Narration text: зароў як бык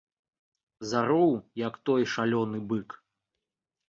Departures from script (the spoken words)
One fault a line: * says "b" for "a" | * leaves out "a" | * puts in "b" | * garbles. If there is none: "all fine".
* puts in "той шалёны"